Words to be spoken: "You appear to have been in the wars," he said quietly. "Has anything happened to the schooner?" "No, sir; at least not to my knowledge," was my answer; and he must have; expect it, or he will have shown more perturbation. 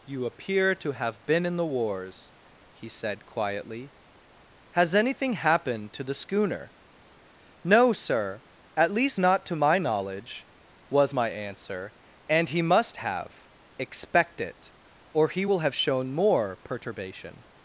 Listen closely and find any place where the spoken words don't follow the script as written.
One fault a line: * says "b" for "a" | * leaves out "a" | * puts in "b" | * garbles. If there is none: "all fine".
all fine